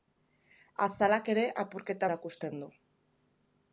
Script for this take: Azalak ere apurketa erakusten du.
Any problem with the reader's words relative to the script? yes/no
no